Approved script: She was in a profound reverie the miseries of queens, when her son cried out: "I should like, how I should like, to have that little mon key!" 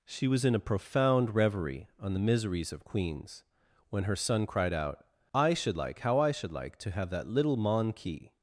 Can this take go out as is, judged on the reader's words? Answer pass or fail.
fail